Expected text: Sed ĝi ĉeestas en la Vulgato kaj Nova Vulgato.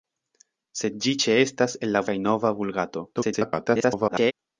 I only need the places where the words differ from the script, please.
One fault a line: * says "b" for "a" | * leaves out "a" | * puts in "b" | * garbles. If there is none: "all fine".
* leaves out "Vulgato"
* garbles